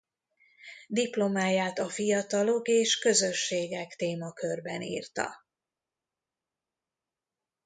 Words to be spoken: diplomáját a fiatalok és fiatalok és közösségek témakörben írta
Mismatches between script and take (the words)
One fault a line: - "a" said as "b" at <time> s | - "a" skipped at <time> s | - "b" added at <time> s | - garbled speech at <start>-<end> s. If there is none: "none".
- "fiatalok és" skipped at 3.0 s